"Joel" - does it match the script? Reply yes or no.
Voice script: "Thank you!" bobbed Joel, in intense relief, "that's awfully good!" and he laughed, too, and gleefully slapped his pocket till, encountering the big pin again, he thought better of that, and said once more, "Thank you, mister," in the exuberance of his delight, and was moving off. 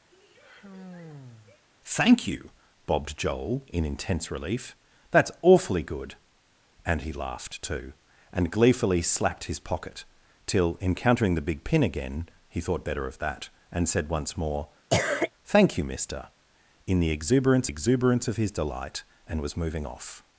yes